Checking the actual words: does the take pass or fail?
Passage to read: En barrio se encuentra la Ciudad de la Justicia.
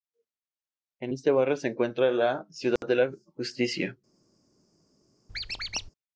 fail